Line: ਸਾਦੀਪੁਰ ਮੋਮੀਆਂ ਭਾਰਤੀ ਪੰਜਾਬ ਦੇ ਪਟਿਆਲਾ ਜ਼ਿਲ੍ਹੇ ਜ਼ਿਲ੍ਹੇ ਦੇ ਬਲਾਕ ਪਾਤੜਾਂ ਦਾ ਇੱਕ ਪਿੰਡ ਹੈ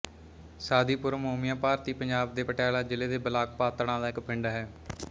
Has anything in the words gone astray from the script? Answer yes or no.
yes